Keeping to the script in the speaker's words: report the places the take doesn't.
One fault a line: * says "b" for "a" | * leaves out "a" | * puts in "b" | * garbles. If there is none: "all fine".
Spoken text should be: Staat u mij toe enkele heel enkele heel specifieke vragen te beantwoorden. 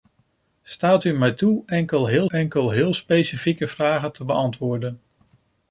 all fine